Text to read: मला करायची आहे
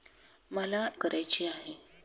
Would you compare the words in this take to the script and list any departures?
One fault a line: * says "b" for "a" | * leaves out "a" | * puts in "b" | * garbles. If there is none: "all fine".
all fine